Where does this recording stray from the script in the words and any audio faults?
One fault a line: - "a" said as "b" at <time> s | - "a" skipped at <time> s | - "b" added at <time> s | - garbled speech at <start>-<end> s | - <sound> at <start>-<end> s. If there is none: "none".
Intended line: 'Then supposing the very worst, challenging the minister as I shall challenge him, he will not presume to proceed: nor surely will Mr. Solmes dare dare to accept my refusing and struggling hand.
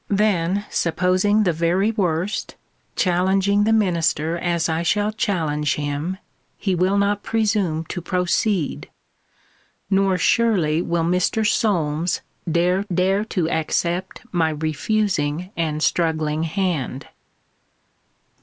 none